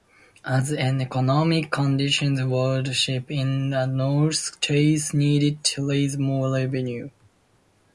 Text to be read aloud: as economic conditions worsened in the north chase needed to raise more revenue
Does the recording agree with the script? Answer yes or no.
yes